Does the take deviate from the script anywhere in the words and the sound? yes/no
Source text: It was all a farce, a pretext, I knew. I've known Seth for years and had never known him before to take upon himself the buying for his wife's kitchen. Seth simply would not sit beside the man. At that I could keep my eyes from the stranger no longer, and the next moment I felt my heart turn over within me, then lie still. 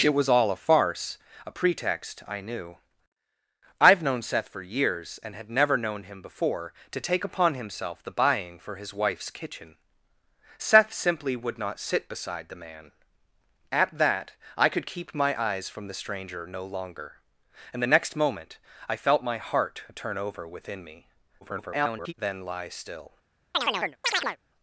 yes